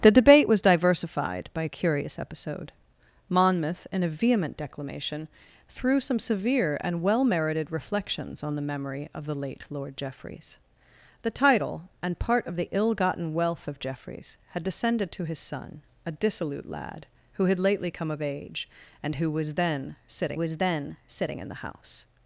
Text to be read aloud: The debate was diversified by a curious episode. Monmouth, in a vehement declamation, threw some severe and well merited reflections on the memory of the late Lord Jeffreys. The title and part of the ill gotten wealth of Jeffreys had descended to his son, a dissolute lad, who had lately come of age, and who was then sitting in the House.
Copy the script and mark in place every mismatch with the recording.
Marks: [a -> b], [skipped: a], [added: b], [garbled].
The debate was diversified by a curious episode. Monmouth, in a vehement declamation, threw some severe and well merited reflections on the memory of the late Lord Jeffreys. The title and part of the ill gotten wealth of Jeffreys had descended to his son, a dissolute lad, who had lately come of age, and who was then sitting [added: was then sitting] in the House.